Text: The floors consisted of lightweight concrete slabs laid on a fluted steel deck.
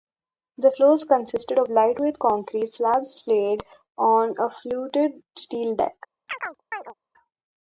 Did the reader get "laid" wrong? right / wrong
right